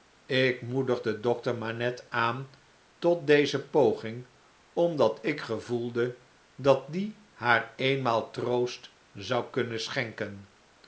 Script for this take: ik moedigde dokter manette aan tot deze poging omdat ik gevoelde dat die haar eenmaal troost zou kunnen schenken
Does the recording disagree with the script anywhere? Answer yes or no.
no